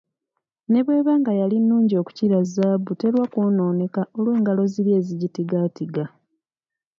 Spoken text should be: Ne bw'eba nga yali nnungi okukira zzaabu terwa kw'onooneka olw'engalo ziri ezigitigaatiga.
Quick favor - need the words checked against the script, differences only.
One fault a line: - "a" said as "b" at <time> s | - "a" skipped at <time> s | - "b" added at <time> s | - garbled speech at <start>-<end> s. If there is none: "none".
none